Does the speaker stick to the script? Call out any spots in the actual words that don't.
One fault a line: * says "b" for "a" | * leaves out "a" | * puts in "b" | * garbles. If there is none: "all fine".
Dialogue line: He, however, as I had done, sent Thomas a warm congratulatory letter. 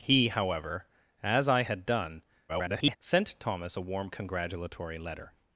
* garbles